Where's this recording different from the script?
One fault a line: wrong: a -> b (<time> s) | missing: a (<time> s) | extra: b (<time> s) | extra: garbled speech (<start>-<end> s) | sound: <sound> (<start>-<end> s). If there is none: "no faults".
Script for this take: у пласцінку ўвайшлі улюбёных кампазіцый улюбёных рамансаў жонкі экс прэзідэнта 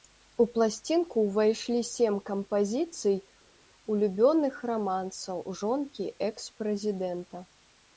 wrong: улюбёных -> сем (1.9 s)